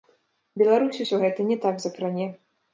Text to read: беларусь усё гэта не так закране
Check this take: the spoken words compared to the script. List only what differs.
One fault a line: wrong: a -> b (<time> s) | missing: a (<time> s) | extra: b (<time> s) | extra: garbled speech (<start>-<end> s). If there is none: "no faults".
no faults